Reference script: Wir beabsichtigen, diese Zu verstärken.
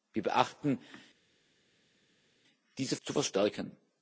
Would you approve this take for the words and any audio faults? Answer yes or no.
yes